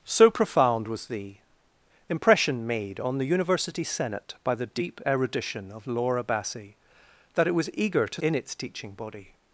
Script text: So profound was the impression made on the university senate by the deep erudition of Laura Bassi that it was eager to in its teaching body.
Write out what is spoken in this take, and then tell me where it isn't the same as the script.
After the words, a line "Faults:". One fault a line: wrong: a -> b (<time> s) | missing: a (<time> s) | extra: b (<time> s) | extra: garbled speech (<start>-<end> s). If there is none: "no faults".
So profound was the impression made on the university senate by the deep erudition of Laura Bassi that it was eager to in its teaching body.
Faults:
no faults